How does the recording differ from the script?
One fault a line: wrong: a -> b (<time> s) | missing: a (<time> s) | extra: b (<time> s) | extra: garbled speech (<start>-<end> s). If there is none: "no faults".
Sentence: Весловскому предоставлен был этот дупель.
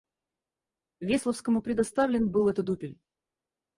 no faults